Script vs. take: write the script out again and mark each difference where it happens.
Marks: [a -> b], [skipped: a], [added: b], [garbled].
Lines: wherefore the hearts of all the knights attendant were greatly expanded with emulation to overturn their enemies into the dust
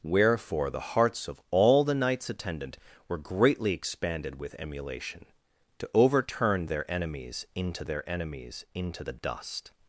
wherefore the hearts of all the knights attendant were greatly expanded with emulation to overturn their enemies into [added: their enemies into] the dust